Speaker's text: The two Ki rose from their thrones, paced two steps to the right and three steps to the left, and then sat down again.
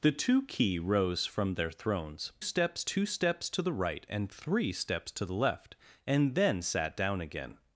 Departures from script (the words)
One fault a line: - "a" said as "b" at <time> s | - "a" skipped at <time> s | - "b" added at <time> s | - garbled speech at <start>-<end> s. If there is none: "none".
- "paced" said as "steps" at 2.4 s